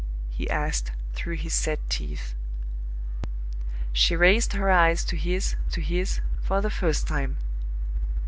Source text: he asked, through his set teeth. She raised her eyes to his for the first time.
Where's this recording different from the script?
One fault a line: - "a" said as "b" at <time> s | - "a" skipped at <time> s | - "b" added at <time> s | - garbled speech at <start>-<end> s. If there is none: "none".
- "to his" added at 5.7 s